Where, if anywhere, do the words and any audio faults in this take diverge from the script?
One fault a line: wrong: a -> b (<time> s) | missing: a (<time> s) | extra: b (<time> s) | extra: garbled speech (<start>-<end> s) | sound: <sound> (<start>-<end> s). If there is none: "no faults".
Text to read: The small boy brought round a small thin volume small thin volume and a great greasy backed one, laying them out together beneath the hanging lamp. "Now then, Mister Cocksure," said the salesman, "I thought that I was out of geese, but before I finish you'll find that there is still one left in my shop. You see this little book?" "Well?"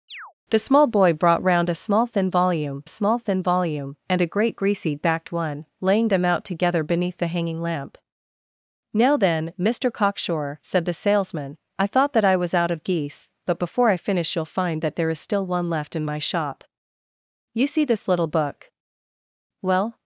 sound: chirp (0.1-0.3 s)